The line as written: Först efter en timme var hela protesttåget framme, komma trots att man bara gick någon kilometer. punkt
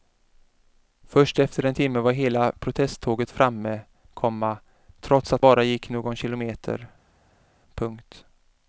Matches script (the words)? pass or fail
fail